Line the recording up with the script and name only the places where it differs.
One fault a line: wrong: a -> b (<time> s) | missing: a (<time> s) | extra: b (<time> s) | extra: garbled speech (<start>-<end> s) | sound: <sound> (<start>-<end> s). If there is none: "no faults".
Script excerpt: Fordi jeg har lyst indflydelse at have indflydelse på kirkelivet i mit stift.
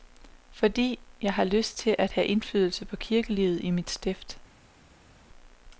wrong: indflydelse -> til (1.8 s)